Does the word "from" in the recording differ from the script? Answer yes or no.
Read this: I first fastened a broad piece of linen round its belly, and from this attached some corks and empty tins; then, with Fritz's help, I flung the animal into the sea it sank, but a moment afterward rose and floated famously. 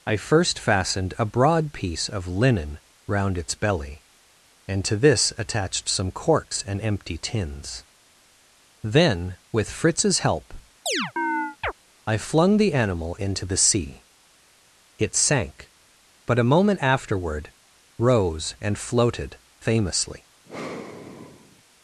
yes